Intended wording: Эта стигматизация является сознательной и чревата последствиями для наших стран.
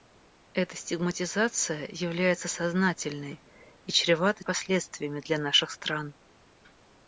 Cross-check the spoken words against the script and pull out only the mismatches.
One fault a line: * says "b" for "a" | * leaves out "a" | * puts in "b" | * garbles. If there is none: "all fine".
all fine